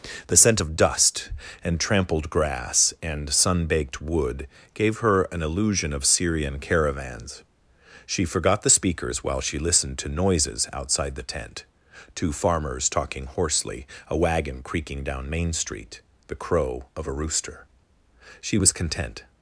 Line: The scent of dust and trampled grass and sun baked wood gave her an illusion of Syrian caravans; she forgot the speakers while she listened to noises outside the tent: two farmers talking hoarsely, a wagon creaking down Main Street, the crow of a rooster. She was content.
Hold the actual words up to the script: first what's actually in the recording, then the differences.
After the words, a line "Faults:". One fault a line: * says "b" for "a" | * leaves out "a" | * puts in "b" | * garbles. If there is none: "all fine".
The scent of dust and trampled grass and sun baked wood gave her an illusion of Syrian caravans; she forgot the speakers while she listened to noises outside the tent: two farmers talking hoarsely, a wagon creaking down Main Street, the crow of a rooster. She was content.
Faults:
all fine